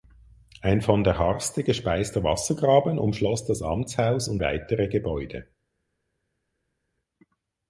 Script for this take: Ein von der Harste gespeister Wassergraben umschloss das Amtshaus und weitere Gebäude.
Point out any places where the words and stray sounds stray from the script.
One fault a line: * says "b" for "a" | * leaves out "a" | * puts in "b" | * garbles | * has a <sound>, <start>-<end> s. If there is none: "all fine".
all fine